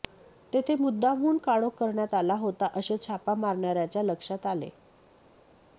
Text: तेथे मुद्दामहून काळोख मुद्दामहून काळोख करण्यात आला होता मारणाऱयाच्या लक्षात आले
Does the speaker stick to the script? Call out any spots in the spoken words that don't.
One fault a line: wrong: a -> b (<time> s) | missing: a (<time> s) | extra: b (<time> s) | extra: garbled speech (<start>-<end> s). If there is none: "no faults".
missing: मुद्दामहून काळोख (1.7 s)
extra: असे छापा (2.8 s)